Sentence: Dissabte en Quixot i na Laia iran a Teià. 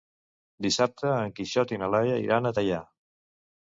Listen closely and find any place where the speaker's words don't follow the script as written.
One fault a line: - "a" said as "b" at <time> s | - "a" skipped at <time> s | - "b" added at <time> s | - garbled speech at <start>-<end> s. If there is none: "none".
none